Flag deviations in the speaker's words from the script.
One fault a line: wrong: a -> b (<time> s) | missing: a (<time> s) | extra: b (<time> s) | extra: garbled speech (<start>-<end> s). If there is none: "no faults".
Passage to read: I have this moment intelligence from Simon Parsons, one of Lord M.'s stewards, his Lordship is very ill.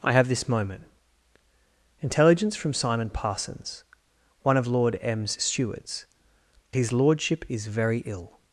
no faults